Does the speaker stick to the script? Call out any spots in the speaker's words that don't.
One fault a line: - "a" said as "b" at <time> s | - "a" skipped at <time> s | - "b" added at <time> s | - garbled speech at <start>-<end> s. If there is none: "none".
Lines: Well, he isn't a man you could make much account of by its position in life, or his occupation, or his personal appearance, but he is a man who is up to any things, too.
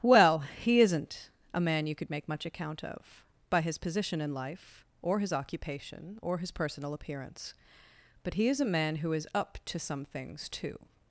- "its" said as "his" at 3.6 s
- "any" said as "some" at 9.8 s